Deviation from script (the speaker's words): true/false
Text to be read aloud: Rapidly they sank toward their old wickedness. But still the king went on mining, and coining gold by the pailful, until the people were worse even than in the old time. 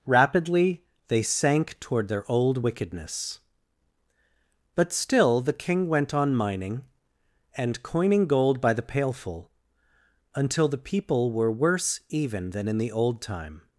false